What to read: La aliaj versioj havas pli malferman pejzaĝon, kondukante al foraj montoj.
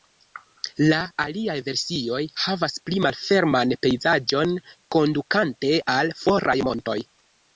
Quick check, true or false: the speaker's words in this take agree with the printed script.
true